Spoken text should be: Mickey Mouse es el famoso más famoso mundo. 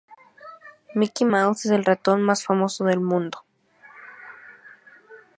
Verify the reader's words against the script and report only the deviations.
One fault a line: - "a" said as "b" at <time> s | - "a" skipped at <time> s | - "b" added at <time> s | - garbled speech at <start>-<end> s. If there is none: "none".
- "famoso" said as "ratón" at 1.8 s
- "del" added at 2.8 s